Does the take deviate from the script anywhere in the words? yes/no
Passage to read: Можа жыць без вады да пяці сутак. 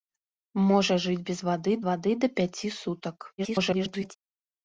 yes